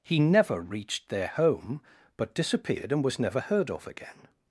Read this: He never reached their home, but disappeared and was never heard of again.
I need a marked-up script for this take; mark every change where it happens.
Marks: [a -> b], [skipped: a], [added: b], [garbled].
He never reached their home, but disappeared and was never heard of again.